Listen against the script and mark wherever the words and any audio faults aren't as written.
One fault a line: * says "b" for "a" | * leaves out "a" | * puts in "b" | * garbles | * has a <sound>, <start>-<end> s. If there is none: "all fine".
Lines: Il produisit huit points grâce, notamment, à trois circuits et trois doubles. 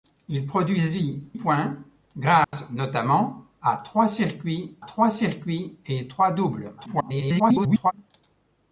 * leaves out "huit"
* has a dropout, 2.4-2.5 s
* puts in "trois circuits"
* garbles